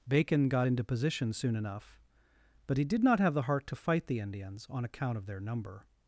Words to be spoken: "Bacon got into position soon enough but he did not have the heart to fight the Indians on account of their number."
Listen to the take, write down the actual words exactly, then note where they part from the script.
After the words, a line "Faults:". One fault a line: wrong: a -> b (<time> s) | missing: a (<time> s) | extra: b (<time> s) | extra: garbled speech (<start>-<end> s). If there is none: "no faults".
"Bacon got into position soon enough but he did not have the heart to fight the Indians on account of their number."
Faults:
no faults